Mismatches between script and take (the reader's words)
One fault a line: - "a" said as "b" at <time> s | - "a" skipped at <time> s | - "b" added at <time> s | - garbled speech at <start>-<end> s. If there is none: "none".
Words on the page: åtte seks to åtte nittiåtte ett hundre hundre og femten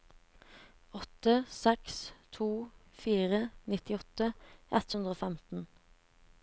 - "åtte" said as "fire" at 3.0 s
- "hundre" skipped at 5.2 s